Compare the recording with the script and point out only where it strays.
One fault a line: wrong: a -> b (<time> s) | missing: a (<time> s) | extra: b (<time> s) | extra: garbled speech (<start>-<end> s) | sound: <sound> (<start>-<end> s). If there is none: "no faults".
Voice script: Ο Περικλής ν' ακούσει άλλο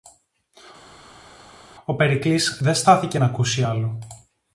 extra: δε στάθηκε (2.6 s)